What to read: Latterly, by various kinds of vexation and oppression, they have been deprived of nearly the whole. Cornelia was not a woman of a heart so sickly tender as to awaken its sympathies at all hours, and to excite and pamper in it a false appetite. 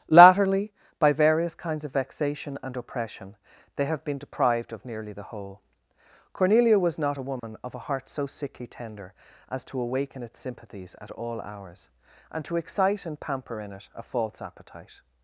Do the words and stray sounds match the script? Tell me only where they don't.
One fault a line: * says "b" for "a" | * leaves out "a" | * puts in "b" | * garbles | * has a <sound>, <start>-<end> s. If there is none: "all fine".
* has a dropout, 7.4-7.4 s